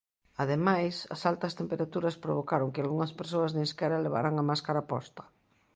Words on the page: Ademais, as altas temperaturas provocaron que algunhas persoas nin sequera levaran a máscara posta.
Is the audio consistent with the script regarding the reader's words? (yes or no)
yes